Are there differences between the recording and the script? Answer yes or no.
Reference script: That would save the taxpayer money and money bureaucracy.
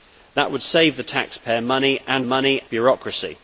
no